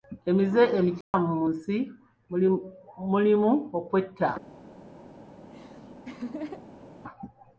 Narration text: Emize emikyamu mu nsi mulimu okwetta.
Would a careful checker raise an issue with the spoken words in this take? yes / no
no